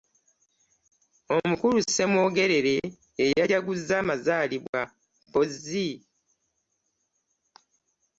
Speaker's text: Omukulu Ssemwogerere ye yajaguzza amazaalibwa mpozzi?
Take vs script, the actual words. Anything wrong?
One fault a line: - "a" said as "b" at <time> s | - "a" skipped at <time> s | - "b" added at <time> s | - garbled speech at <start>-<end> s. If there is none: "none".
none